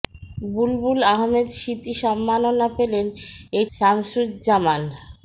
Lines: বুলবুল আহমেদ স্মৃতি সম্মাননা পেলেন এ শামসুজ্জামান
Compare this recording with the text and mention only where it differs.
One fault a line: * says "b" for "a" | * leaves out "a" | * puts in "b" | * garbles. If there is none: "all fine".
all fine